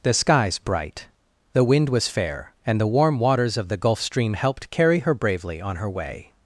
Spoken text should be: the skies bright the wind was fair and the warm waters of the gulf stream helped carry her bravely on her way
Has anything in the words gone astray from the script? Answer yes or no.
no